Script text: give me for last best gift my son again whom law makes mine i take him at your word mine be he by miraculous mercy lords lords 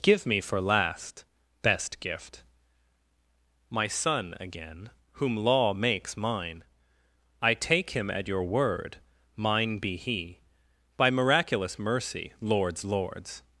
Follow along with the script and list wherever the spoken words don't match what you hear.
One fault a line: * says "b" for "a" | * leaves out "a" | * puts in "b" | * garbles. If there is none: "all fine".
all fine